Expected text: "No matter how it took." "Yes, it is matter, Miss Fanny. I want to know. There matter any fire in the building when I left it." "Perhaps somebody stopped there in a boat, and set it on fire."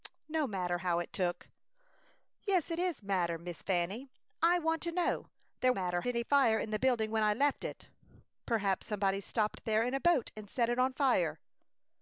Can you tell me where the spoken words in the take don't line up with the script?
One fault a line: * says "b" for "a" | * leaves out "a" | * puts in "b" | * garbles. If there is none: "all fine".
all fine